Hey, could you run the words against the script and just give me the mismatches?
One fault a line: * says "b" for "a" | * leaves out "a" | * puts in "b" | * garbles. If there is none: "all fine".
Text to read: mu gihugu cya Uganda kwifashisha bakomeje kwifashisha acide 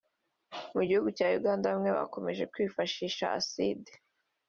* says "bamwe" for "kwifashisha"